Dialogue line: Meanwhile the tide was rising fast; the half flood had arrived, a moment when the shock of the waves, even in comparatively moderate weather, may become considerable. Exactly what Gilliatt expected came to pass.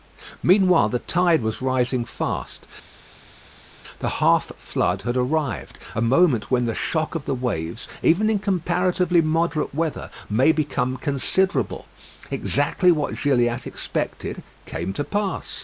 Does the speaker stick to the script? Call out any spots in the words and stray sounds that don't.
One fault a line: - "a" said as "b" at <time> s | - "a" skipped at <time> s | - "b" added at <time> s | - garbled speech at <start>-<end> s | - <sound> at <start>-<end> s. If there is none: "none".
none